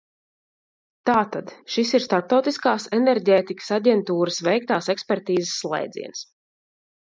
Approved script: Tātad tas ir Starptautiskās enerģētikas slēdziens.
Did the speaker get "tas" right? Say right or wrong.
wrong